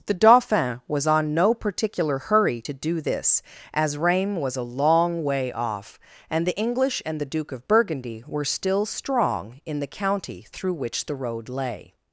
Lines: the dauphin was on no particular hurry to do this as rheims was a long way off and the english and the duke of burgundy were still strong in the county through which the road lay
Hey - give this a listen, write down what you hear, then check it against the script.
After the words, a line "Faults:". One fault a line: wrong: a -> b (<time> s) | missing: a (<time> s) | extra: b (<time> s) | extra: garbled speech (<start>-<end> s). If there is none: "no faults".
the dauphin was on no particular hurry to do this as rheims was a long way off and the english and the duke of burgundy were still strong in the county through which the road lay
Faults:
no faults